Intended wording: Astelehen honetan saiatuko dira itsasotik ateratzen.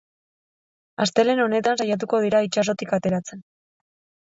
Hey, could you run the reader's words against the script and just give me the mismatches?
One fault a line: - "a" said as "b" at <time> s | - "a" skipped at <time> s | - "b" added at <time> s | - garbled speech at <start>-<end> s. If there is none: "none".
none